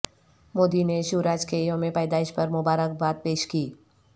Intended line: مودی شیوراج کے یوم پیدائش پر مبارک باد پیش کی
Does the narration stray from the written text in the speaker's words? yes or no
yes